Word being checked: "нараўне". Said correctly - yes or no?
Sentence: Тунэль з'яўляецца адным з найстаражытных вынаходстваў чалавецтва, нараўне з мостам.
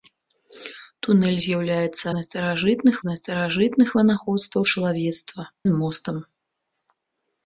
no